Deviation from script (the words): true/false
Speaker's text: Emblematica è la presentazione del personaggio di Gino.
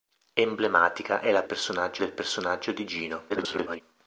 true